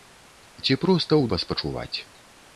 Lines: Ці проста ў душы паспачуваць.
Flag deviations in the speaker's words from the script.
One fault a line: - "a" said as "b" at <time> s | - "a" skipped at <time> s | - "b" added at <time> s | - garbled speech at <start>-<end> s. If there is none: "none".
- "душы" skipped at 1.2 s